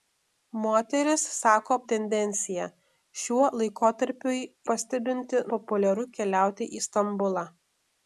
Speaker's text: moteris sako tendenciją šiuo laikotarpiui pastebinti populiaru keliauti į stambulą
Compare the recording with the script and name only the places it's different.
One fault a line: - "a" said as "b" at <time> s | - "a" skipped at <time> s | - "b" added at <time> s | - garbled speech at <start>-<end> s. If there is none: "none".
none